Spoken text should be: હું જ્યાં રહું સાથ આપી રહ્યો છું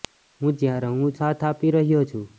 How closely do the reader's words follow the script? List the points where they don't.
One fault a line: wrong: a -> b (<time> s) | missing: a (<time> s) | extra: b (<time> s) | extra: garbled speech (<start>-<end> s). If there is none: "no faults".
no faults